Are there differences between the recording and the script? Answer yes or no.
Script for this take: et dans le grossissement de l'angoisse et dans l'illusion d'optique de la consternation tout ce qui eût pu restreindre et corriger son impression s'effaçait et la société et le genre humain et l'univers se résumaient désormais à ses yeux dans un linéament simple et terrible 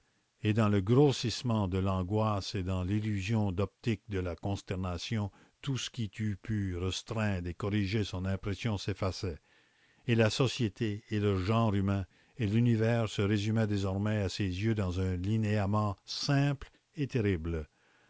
no